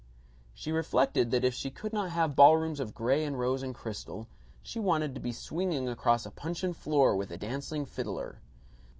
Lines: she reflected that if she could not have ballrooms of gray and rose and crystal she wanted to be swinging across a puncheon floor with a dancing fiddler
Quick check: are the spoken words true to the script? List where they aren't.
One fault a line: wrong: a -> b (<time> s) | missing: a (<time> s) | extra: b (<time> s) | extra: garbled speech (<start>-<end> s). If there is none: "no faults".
no faults